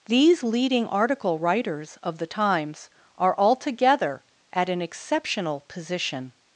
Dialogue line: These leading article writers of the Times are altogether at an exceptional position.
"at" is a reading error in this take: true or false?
false